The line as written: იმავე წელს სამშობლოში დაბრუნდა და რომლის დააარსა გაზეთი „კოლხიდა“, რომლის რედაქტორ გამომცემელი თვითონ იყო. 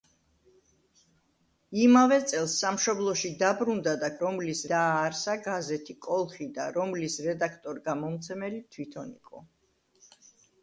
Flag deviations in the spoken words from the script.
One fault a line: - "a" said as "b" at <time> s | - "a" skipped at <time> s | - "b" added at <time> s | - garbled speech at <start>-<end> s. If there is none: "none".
none